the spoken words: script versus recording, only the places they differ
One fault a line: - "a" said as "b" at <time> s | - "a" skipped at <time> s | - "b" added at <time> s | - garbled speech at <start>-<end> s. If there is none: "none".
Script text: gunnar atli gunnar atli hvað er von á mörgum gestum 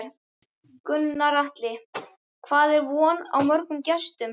- "gunnar atli" skipped at 1.7 s